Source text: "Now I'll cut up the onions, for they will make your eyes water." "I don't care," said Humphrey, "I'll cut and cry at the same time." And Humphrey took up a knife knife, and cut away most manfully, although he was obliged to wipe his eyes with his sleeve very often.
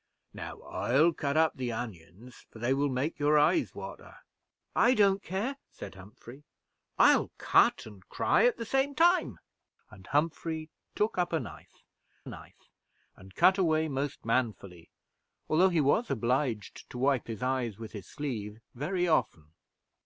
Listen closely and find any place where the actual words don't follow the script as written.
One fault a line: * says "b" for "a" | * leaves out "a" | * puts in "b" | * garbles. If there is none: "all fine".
all fine